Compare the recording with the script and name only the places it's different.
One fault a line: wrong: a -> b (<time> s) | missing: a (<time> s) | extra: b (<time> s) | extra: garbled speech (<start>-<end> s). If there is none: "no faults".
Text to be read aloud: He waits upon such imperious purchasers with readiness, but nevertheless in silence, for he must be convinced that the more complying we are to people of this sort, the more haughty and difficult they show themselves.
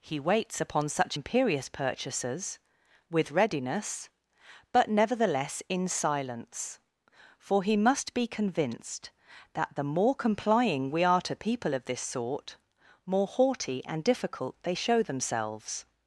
missing: the (12.6 s)